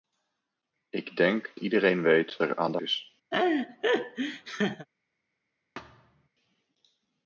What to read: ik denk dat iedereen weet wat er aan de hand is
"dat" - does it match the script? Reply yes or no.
no